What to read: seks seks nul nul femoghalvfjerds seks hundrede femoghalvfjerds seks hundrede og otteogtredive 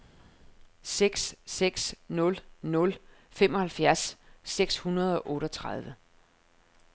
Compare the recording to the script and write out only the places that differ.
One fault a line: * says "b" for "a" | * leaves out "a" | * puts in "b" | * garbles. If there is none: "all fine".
* leaves out "femoghalvfjerds seks hundrede"